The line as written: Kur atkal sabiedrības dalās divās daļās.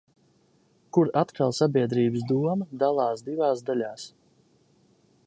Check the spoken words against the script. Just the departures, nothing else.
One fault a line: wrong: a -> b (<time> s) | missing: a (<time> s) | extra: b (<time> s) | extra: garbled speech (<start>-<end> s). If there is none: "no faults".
extra: doma (2.3 s)